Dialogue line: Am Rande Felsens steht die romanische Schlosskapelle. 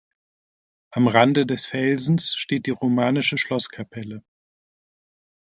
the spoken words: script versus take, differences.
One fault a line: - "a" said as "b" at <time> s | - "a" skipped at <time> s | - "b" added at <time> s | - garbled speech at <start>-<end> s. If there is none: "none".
- "des" added at 1.4 s